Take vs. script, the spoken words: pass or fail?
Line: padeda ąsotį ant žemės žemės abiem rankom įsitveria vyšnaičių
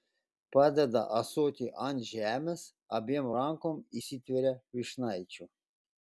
fail